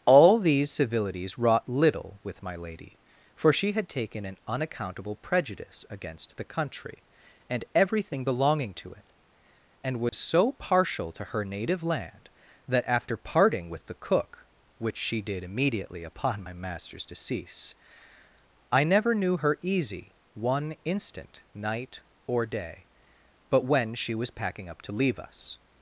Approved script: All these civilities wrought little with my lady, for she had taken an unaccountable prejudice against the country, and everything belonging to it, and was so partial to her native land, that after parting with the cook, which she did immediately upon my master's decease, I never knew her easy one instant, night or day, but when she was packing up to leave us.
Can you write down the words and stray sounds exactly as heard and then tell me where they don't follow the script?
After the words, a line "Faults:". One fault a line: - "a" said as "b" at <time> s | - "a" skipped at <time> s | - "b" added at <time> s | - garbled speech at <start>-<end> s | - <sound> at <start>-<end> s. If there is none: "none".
All these civilities wrought little with my lady, for she had taken an unaccountable prejudice against the country, and everything belonging to it, and was so partial to her native land, that after parting with the cook, which she did immediately upon my master's decease, I never knew her easy one instant, night or day, but when she was packing up to leave us.
Faults:
- dropout at 10.1-10.1 s